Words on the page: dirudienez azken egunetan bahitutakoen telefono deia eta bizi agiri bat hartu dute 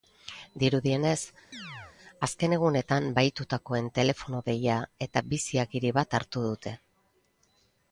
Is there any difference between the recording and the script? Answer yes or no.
no